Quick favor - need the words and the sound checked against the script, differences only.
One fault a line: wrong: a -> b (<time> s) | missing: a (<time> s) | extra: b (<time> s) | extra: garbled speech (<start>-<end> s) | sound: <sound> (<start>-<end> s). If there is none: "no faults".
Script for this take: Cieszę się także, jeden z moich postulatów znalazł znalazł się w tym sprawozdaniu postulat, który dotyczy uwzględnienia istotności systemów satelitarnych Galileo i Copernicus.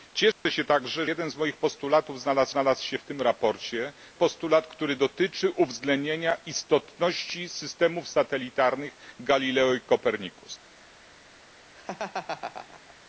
sound: dropout (0.3-0.5 s)
sound: laugh (11.7-13.0 s)